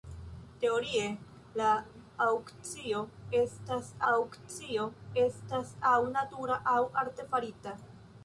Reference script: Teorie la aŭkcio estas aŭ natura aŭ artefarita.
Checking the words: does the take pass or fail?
fail